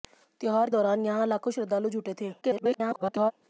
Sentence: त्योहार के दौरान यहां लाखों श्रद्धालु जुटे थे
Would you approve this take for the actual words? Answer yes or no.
no